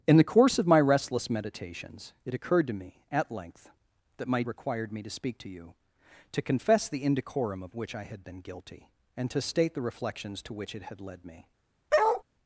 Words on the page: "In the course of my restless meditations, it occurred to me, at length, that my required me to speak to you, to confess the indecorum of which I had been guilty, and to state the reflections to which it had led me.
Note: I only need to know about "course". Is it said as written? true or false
true